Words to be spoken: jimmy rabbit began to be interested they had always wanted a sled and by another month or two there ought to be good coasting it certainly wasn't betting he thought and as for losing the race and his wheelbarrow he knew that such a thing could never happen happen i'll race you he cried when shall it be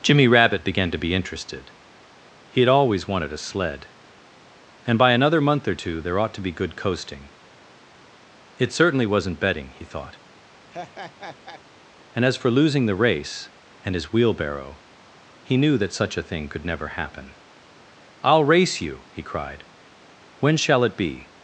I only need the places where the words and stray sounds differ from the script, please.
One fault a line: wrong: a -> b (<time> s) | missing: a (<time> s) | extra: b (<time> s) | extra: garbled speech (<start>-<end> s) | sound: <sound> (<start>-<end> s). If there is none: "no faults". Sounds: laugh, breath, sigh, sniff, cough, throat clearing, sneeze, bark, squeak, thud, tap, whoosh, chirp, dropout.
wrong: they -> he (2.5 s)
sound: laugh (10.7-11.6 s)
missing: happen (17.3 s)